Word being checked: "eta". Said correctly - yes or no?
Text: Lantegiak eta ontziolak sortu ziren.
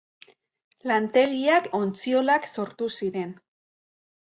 no